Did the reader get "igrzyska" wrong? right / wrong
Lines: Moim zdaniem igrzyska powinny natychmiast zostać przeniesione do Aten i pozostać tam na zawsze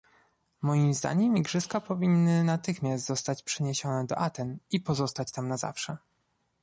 right